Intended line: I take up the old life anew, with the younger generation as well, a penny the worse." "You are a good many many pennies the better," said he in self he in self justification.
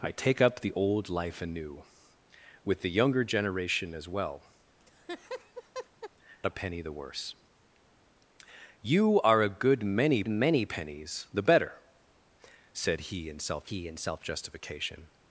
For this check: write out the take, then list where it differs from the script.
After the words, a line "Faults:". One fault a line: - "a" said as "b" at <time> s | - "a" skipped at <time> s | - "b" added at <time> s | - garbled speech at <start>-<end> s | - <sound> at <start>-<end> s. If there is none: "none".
I take up the old life anew, with the younger generation as well, a penny the worse." "You are a good many many pennies the better," said he in self he in self justification.
Faults:
- laugh at 4.8-6.1 s